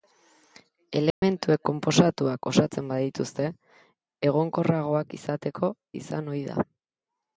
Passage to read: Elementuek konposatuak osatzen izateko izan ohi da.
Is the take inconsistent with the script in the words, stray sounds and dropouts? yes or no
yes